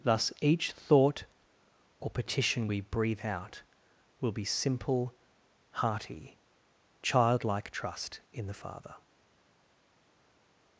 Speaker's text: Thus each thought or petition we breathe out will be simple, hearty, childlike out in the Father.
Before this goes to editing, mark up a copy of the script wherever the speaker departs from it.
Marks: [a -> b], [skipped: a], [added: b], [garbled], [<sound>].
Thus each thought or petition we breathe out will be simple, hearty, childlike [out -> trust] in the Father.